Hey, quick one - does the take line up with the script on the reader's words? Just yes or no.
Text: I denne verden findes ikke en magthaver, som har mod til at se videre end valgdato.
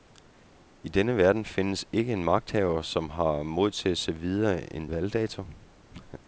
yes